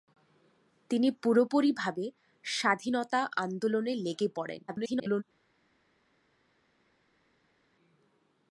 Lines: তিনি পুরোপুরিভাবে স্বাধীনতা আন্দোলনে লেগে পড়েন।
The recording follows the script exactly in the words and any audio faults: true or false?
false